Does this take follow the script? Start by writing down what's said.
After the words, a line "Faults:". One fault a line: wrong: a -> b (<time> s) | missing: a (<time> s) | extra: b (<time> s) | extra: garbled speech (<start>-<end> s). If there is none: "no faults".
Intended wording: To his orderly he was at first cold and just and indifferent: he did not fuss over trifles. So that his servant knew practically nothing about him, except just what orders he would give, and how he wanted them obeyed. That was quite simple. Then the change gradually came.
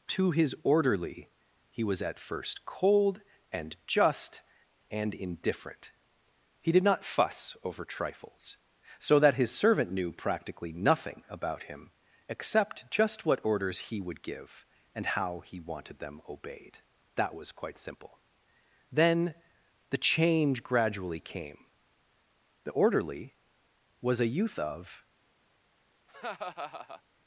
To his orderly he was at first cold and just and indifferent: he did not fuss over trifles. So that his servant knew practically nothing about him, except just what orders he would give, and how he wanted them obeyed. That was quite simple. Then the change gradually came. The orderly was a youth of
Faults:
extra: The orderly was a youth of (22.6 s)